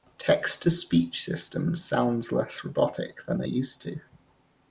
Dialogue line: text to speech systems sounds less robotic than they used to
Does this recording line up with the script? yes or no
yes